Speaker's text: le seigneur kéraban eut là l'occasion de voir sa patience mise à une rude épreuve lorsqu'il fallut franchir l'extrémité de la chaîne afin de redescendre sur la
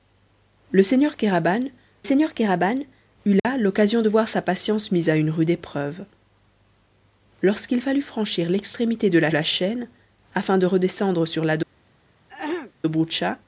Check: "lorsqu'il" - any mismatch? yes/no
no